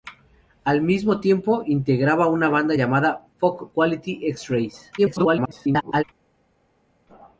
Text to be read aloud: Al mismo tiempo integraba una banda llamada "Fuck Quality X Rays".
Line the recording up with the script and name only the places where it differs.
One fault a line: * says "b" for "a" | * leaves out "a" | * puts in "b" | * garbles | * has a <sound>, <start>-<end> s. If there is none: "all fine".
* garbles